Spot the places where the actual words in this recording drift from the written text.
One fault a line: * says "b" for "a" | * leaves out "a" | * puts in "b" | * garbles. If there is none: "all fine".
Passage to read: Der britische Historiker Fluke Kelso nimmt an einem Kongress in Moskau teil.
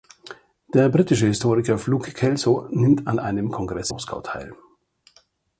* leaves out "in"